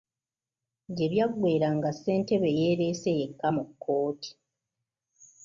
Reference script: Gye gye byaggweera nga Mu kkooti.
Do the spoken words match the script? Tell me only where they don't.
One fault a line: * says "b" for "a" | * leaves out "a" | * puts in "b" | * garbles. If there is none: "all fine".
* leaves out "gye"
* puts in "Ssentebe yeereese yekka"